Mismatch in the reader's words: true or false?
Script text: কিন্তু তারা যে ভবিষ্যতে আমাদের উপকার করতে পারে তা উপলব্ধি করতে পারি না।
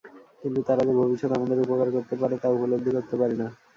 false